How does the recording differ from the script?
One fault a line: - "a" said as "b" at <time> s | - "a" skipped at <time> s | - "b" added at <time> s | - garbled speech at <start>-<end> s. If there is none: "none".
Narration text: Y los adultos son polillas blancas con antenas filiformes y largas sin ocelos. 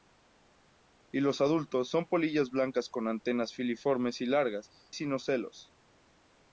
none